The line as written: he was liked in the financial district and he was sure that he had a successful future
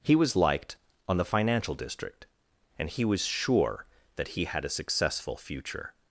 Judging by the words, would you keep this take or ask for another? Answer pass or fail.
fail